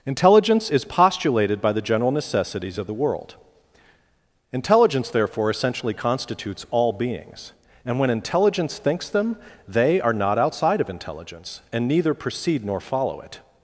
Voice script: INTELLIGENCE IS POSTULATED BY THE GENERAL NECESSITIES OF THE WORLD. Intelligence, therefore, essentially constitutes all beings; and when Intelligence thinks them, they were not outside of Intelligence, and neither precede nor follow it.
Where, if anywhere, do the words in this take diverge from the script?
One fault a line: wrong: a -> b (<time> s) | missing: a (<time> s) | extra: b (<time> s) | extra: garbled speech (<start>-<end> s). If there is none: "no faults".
wrong: were -> are (10.0 s)